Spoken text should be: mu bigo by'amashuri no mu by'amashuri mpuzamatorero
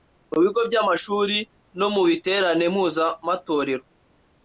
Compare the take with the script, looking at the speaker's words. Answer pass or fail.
fail